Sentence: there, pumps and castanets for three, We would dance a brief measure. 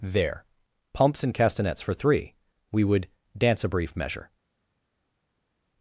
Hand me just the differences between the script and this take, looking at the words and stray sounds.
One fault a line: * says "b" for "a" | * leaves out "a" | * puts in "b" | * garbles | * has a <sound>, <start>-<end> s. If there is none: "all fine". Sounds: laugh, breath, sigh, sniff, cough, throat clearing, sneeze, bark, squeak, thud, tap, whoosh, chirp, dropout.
all fine